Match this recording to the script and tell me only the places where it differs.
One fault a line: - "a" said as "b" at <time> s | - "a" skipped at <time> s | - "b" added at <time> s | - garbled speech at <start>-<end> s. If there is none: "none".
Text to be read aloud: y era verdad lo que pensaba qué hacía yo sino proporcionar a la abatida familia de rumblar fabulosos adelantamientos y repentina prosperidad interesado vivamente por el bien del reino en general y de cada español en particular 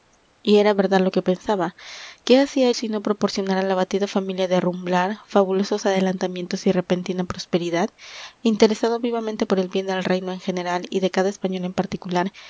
- "yo" skipped at 2.7 s